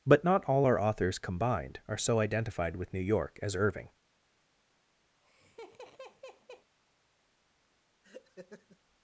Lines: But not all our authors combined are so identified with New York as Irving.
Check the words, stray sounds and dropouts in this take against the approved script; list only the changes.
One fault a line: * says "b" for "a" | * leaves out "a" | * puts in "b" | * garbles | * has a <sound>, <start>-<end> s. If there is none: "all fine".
* has a laugh, 5.2-6.7 s
* has a laugh, 8.0-8.8 s